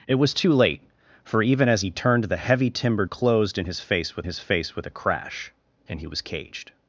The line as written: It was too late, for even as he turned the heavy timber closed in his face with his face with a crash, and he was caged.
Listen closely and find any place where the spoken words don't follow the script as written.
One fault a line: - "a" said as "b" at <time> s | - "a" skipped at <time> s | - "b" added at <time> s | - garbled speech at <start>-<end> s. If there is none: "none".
none